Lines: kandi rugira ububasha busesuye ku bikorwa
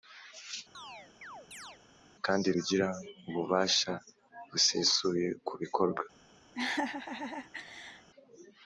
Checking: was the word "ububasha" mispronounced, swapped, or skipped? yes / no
no